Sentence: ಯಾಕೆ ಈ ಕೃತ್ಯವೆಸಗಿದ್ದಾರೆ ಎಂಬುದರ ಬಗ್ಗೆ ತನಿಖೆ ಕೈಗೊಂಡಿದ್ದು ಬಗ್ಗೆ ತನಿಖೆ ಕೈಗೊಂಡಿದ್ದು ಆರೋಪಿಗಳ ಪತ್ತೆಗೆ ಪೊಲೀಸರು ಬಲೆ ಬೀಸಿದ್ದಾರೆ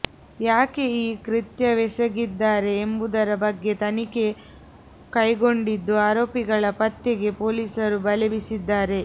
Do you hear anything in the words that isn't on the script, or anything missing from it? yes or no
yes